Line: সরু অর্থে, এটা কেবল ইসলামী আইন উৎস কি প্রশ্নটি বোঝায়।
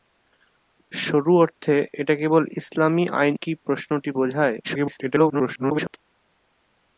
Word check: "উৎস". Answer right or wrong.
wrong